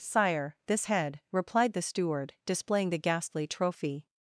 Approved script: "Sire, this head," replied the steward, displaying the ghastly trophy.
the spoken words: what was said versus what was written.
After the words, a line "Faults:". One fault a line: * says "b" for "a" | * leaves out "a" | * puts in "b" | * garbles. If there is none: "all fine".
"Sire, this head," replied the steward, displaying the ghastly trophy.
Faults:
all fine